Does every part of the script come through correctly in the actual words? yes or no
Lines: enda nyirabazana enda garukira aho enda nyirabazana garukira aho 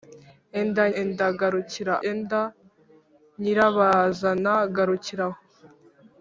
no